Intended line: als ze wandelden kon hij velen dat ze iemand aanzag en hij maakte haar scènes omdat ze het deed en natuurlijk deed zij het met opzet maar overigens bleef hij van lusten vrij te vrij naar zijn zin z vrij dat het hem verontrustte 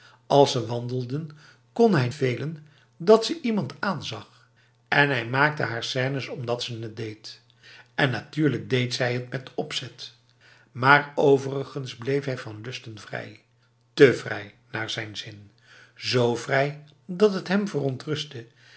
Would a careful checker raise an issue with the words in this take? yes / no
no